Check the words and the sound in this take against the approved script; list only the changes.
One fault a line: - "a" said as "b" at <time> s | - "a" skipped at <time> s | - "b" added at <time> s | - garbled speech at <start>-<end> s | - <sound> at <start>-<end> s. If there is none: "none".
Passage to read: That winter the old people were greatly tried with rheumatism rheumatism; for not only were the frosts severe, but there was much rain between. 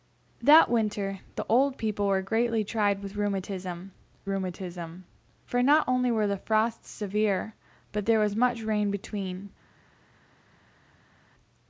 none